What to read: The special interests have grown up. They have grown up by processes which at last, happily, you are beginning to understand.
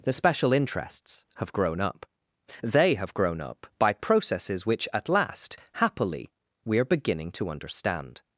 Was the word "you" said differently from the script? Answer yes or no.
yes